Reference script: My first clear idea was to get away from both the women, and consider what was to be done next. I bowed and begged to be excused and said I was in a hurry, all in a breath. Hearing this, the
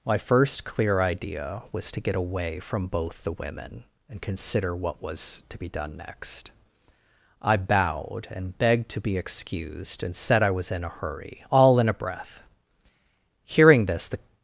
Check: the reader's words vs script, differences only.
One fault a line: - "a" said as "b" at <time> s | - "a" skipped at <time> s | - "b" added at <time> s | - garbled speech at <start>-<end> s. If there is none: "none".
none